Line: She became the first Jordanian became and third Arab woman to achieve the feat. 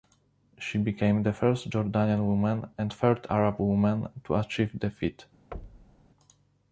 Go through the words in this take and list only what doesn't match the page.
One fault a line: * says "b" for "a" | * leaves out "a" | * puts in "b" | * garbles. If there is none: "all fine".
* says "woman" for "became"